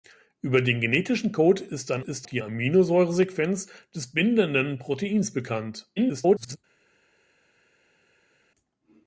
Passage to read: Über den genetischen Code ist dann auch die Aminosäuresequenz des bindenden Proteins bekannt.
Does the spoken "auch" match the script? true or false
false